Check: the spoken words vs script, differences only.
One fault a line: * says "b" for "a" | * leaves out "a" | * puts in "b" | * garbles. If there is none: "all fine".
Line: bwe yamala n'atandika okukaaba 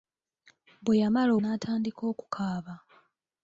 all fine